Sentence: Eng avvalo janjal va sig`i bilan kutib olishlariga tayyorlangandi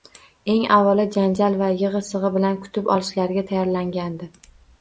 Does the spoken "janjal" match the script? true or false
true